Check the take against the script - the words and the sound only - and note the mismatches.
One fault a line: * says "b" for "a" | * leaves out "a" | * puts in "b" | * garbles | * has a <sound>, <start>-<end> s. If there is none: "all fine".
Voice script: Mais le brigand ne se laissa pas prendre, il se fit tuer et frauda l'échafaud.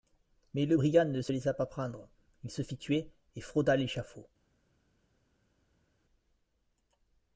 all fine